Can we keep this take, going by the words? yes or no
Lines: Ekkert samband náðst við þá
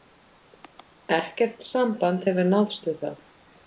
no